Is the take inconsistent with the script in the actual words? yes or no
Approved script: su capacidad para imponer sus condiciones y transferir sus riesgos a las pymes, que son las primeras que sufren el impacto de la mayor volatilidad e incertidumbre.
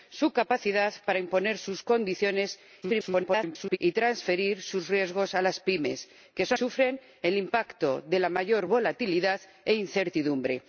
yes